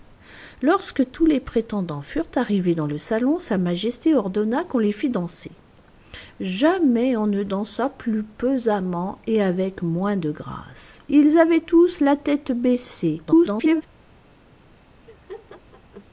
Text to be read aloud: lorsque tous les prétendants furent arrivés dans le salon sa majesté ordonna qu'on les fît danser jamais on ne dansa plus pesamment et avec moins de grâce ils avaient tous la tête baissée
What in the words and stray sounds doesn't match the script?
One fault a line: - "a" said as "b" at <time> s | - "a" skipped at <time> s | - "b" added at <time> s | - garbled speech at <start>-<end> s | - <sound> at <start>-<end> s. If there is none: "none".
- garbled speech at 13.3-13.8 s
- laugh at 15.1-16.1 s